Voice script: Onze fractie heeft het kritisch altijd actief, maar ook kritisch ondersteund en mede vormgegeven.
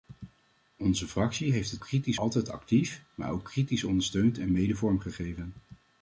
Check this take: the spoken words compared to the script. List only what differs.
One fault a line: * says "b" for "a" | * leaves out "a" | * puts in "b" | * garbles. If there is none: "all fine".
all fine